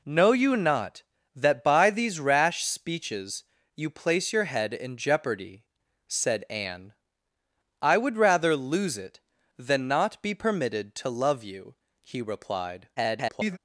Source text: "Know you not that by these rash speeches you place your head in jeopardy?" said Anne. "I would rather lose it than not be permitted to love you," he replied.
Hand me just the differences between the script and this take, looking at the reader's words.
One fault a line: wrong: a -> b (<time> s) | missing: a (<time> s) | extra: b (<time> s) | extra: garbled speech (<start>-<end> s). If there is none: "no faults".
extra: garbled speech (13.0-13.6 s)